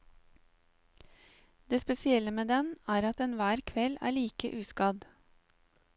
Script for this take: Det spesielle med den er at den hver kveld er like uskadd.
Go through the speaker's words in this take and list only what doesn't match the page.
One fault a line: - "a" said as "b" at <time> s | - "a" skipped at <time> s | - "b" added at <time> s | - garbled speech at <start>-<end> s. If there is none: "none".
none